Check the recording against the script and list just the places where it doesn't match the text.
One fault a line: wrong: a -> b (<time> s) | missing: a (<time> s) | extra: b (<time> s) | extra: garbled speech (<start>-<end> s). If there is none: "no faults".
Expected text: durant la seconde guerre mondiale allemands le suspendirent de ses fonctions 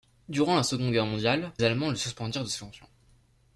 no faults